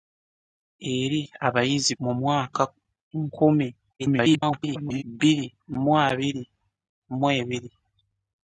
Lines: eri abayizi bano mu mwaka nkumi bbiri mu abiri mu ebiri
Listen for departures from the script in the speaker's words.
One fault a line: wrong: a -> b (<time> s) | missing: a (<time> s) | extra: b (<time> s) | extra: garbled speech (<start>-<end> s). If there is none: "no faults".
missing: bano (1.9 s)
extra: garbled speech (4.0-5.0 s)